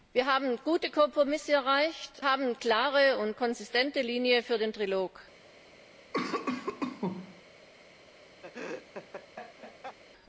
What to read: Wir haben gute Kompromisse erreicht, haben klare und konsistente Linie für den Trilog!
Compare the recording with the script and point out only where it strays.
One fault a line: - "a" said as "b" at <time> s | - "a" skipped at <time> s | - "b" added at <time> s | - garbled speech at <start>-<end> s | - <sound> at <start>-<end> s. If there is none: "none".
- cough at 6.1-7.4 s
- laugh at 8.4-10.0 s